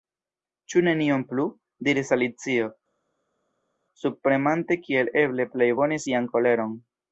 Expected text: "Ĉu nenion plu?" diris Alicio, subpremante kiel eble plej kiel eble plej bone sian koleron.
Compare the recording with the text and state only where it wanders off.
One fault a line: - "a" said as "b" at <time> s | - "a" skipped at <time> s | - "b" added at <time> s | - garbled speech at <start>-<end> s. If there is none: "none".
- "kiel eble plej" skipped at 5.7 s